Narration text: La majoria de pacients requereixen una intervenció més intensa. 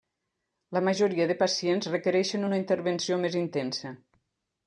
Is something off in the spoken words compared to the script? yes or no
no